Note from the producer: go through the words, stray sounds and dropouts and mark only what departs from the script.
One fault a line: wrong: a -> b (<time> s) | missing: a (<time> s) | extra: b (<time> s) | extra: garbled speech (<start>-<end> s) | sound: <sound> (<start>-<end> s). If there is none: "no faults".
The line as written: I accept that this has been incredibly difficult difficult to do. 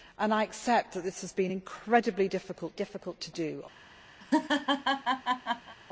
sound: laugh (4.2-5.8 s)